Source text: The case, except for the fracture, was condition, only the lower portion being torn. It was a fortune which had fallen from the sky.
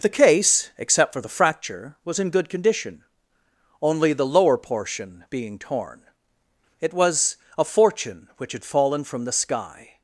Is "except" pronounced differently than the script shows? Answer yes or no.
no